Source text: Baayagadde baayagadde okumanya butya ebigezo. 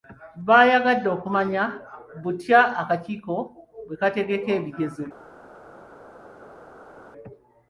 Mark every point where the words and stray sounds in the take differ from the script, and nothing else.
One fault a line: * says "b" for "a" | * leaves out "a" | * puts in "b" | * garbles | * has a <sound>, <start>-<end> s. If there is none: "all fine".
* leaves out "baayagadde"
* puts in "akakiiko bwe kategeka"